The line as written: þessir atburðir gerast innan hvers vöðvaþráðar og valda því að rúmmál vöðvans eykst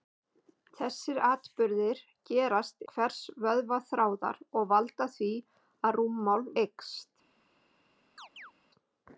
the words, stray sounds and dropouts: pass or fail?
fail